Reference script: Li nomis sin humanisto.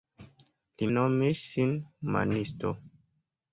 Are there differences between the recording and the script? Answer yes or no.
no